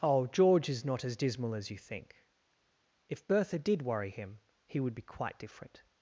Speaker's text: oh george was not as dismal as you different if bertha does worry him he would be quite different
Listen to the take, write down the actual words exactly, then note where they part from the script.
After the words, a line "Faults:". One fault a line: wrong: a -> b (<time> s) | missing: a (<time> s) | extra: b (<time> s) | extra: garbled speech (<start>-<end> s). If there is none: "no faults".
oh george is not as dismal as you think if bertha did worry him he would be quite different
Faults:
wrong: was -> is (0.7 s)
wrong: different -> think (1.8 s)
wrong: does -> did (3.6 s)